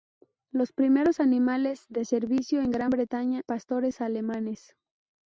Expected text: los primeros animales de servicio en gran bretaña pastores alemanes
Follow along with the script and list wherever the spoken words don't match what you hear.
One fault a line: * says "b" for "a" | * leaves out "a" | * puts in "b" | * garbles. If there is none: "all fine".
all fine